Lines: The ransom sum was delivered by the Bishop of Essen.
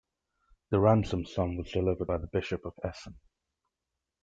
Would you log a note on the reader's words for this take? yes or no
no